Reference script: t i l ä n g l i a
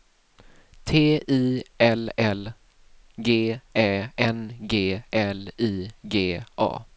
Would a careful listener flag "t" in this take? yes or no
no